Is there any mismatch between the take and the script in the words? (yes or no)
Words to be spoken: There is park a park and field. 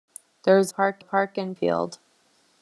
no